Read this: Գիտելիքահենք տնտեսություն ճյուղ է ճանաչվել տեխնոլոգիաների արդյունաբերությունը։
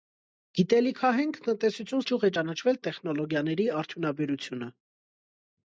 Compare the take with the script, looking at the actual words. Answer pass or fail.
pass